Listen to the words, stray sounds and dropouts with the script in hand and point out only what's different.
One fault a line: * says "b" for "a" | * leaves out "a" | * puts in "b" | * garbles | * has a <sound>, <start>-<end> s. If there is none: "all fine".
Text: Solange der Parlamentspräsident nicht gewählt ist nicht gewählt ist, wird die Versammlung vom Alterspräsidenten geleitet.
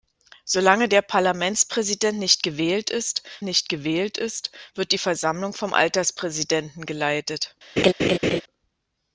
* has a laugh, 7.8-8.4 s